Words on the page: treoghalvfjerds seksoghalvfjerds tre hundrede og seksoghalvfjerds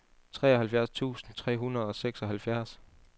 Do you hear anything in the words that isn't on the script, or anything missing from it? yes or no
yes